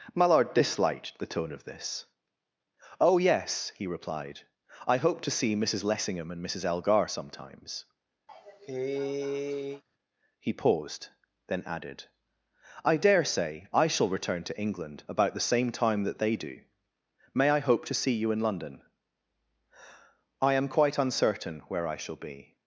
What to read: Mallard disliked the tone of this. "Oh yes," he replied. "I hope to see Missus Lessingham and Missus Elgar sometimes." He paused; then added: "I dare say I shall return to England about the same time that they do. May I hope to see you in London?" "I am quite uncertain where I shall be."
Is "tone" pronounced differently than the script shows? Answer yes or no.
no